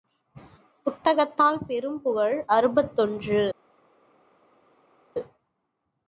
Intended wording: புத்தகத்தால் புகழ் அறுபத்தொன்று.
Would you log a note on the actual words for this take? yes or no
yes